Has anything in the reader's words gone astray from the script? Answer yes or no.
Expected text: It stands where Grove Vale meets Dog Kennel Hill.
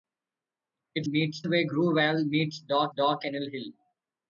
yes